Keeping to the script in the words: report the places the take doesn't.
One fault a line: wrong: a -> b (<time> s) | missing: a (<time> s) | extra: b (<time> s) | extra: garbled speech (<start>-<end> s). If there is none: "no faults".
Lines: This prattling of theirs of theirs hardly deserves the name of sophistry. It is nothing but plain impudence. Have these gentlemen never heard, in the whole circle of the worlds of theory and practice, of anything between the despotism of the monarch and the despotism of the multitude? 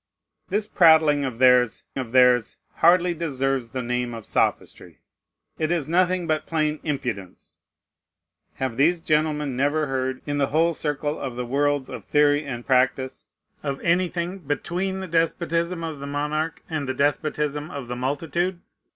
no faults